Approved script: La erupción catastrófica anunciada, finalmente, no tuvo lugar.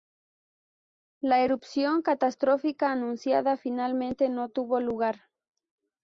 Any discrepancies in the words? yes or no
no